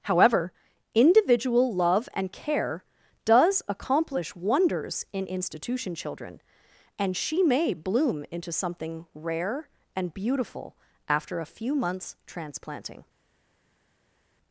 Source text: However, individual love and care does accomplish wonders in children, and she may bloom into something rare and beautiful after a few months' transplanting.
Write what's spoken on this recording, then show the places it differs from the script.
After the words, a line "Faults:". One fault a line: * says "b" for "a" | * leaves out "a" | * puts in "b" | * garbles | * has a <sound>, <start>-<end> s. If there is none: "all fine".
However, individual love and care does accomplish wonders in institution children, and she may bloom into something rare and beautiful after a few months' transplanting.
Faults:
* puts in "institution"